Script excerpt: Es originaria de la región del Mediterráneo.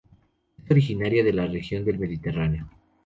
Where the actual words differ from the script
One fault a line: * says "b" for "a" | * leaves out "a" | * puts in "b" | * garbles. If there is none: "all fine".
all fine